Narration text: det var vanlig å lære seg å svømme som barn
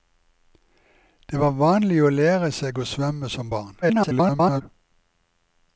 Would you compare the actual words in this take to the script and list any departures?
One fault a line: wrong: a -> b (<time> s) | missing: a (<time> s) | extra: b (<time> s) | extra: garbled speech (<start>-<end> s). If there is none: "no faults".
extra: garbled speech (3.8-4.6 s)